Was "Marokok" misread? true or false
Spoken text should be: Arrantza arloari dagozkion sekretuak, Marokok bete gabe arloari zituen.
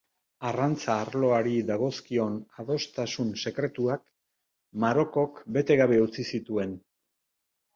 false